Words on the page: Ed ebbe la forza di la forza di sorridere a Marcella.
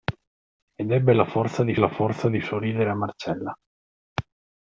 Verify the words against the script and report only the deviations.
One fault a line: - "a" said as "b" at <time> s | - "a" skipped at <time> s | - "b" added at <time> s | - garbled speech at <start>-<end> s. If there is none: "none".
none